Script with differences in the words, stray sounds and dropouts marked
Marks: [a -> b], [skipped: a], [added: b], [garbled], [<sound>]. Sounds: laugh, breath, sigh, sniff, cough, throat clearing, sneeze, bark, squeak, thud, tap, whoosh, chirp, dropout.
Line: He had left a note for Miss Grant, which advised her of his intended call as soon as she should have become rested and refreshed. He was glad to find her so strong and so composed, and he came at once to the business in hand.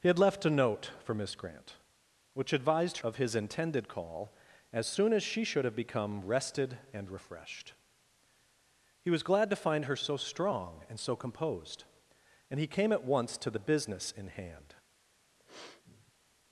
He had left a note for Miss Grant, which advised [skipped: her] of his intended call as soon as she should have become rested and refreshed. He was glad to find her so strong and so composed, and he came at once to the business in hand. [sniff]